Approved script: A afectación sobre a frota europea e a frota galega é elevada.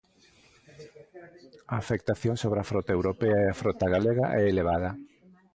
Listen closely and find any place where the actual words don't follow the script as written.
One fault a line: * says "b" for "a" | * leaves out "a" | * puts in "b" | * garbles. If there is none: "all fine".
all fine